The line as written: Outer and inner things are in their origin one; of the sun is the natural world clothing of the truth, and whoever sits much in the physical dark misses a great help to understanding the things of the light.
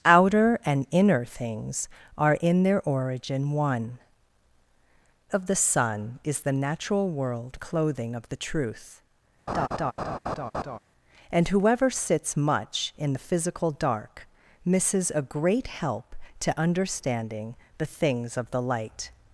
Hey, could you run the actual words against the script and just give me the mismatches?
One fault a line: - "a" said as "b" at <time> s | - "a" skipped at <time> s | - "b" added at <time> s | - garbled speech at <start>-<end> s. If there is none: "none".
none